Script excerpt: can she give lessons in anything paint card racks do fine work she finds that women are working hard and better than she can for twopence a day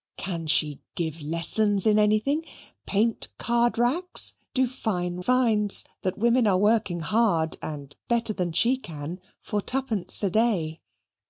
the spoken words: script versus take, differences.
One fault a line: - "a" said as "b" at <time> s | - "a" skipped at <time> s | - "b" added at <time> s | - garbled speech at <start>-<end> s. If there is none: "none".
- "work she" skipped at 5.2 s